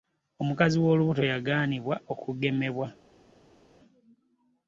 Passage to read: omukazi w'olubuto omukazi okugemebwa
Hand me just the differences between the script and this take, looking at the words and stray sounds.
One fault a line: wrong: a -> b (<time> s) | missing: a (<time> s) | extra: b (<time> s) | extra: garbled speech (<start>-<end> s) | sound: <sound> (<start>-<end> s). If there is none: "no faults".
wrong: omukazi -> yagaanibwa (1.3 s)